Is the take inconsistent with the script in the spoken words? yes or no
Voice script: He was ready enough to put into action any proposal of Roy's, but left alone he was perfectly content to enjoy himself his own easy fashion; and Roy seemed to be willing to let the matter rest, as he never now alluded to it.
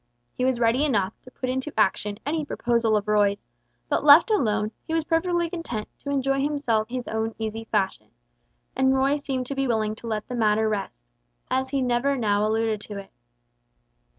no